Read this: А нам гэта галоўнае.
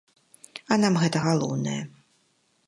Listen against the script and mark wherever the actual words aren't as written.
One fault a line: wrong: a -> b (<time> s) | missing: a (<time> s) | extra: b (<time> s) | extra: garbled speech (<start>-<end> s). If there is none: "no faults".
no faults